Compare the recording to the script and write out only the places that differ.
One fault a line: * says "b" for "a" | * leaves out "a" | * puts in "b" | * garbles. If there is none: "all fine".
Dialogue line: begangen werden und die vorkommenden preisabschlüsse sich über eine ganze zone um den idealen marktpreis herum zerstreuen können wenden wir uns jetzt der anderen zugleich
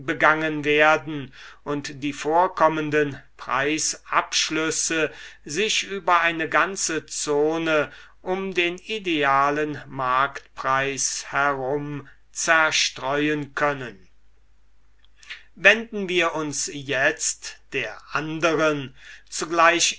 all fine